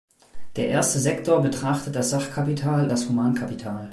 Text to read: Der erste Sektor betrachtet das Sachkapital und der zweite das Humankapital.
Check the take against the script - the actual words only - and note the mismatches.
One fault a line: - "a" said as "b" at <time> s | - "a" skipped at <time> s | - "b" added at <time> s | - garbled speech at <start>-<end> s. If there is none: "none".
- "und der zweite" skipped at 2.9 s